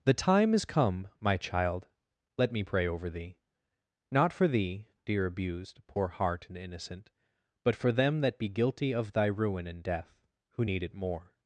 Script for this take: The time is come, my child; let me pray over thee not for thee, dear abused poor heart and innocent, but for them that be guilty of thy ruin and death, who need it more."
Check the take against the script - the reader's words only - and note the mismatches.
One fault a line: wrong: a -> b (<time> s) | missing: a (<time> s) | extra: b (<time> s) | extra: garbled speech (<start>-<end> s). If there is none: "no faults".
no faults